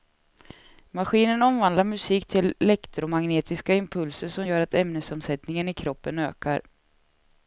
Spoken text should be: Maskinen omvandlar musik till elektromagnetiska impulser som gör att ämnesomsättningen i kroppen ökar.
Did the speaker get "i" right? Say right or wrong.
right